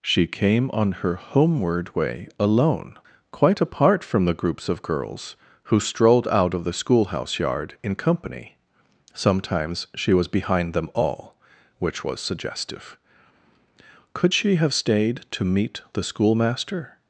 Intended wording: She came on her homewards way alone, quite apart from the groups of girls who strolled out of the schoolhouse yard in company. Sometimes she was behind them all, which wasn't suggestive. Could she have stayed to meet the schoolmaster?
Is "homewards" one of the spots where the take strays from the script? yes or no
yes